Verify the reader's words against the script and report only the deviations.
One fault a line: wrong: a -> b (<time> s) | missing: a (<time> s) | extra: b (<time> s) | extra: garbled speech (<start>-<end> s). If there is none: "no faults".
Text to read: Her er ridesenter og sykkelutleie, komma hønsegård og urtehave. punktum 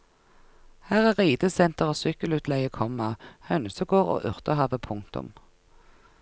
no faults